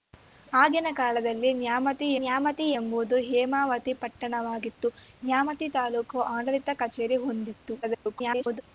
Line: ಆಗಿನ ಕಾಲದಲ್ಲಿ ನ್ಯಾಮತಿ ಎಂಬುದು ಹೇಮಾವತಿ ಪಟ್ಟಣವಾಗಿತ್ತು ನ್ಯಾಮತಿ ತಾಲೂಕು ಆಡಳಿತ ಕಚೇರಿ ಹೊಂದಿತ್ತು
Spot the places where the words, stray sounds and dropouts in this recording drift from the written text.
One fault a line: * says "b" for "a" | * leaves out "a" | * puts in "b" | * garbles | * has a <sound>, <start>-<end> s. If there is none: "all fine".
* puts in "ನ್ಯಾಮತಿ"
* garbles